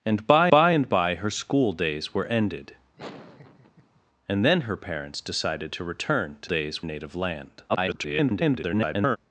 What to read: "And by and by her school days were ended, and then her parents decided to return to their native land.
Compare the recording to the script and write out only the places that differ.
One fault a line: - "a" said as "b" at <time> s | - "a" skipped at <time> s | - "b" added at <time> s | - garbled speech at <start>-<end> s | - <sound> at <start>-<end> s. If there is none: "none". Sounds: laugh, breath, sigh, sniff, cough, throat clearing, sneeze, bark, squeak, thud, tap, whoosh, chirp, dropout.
- "by" added at 0.5 s
- laugh at 3.0-4.0 s
- "their" said as "days" at 6.4 s
- garbled speech at 7.7-9.2 s